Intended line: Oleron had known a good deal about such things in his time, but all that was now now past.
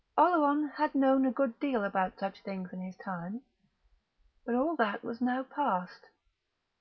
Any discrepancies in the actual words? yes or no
yes